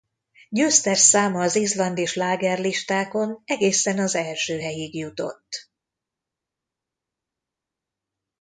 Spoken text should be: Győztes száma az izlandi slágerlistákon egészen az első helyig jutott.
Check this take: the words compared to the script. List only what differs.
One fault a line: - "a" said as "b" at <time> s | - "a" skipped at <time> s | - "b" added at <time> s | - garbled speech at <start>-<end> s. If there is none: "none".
none